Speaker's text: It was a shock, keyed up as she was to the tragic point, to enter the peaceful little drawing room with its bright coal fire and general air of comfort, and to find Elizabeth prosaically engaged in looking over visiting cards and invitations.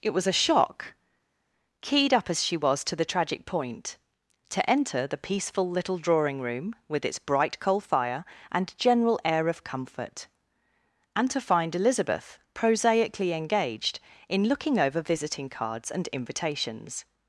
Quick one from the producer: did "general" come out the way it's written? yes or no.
yes